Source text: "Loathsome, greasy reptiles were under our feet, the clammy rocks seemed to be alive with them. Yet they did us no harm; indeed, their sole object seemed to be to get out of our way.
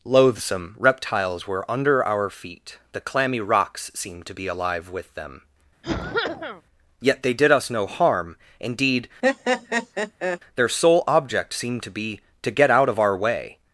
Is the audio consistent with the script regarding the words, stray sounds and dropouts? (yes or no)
no